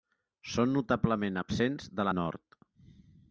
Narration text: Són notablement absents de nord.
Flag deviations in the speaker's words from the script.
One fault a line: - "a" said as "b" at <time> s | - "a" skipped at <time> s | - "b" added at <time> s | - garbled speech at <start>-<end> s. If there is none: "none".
none